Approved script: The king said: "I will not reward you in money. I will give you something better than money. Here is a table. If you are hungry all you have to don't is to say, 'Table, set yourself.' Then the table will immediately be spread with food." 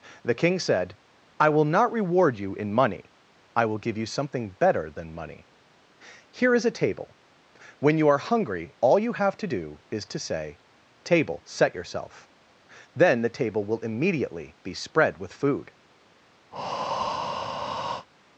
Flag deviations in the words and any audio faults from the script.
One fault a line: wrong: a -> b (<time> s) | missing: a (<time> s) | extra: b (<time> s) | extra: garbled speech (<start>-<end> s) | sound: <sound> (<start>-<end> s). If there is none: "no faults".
wrong: If -> When (7.8 s)
wrong: don't -> do (9.4 s)
sound: breath (16.5-18.1 s)